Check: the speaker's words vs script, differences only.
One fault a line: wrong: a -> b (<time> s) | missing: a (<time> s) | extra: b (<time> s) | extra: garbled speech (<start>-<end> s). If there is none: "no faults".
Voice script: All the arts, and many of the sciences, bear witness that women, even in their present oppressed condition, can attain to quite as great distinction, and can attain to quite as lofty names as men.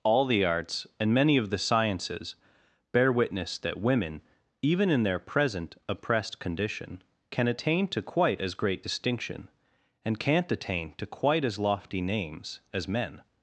wrong: can -> can't (10.2 s)